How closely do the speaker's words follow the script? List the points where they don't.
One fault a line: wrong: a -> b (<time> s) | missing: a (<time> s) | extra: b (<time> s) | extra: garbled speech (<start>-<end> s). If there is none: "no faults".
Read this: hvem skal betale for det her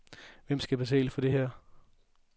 no faults